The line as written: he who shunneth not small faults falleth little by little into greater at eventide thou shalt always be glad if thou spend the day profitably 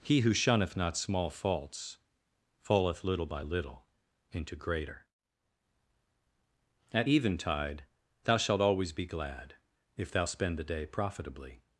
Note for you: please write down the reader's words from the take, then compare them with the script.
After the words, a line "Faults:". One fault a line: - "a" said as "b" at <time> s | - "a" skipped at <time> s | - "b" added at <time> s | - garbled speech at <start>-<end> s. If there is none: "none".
he who shunneth not small faults falleth little by little into greater at eventide thou shalt always be glad if thou spend the day profitably
Faults:
none